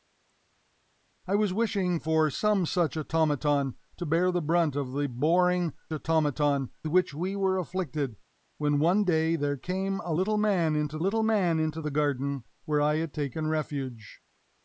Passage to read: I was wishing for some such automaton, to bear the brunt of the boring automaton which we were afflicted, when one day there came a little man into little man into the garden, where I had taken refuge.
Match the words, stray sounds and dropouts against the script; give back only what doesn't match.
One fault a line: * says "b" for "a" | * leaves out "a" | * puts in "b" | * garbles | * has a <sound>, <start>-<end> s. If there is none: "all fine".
all fine